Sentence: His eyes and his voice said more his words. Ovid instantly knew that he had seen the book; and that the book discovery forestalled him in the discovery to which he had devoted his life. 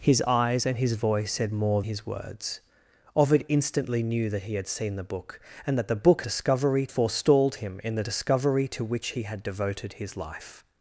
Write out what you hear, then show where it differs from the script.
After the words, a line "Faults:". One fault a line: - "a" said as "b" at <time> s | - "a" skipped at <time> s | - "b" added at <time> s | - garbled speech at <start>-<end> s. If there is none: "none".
His eyes and his voice said more his words. Ovid instantly knew that he had seen the book; and that the book discovery forestalled him in the discovery to which he had devoted his life.
Faults:
none